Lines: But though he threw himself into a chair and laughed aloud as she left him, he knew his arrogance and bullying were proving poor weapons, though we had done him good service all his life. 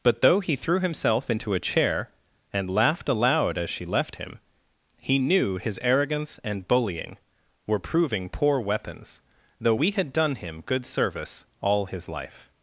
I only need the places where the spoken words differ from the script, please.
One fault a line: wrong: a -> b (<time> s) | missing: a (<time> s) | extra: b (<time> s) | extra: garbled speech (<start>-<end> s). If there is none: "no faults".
no faults